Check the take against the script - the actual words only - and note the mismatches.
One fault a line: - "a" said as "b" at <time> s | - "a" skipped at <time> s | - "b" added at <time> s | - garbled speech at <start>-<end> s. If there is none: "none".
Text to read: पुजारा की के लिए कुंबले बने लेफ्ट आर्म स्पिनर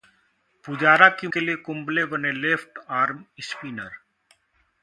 none